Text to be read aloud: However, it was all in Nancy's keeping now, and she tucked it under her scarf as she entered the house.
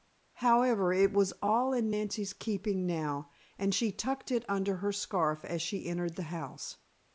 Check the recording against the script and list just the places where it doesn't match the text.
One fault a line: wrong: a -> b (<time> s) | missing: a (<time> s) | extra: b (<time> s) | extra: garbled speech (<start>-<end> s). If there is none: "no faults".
no faults